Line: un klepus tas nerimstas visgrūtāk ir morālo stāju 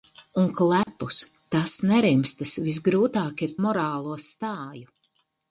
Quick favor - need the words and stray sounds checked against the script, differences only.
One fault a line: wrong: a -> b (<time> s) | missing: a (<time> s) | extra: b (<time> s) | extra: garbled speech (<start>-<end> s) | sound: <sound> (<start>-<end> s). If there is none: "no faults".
sound: dropout (0.8-0.9 s)